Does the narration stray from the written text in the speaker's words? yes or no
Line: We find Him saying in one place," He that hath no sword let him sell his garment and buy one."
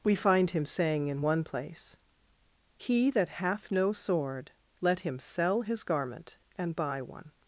no